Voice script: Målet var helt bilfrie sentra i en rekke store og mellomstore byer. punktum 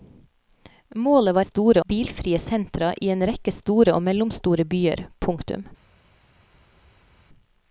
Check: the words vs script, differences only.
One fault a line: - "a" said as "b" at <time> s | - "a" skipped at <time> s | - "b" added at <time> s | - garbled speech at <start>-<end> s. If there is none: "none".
- "helt" said as "store" at 1.4 s